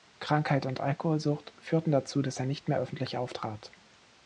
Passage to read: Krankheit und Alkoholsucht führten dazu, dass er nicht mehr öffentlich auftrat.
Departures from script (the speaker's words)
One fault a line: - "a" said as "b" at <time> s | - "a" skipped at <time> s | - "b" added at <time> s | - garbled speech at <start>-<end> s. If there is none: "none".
none